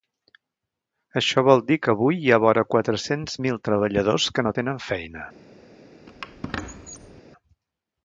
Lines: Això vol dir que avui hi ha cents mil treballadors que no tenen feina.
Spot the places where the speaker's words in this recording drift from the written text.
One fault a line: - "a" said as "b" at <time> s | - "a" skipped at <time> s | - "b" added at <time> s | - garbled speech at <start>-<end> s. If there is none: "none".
- "vora quatre" added at 2.5 s